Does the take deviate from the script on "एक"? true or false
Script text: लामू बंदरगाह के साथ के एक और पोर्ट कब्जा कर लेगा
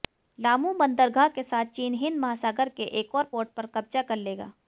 false